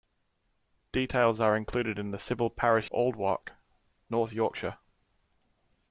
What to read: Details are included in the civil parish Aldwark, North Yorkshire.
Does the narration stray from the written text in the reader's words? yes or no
no